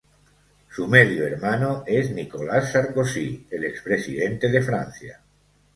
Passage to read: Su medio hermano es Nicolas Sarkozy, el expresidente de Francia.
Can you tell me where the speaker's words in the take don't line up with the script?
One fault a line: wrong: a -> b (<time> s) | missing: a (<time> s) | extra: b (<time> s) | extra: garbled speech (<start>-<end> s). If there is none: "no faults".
no faults